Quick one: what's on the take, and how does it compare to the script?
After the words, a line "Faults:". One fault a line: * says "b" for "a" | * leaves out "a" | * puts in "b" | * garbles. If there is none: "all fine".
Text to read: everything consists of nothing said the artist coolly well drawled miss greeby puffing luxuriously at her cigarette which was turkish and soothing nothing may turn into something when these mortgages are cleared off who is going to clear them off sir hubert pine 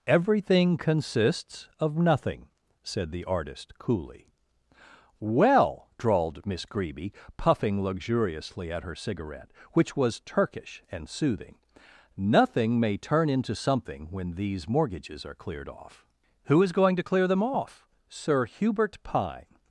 everything consists of nothing said the artist coolly well drawled miss greeby puffing luxuriously at her cigarette which was turkish and soothing nothing may turn into something when these mortgages are cleared off who is going to clear them off sir hubert pine
Faults:
all fine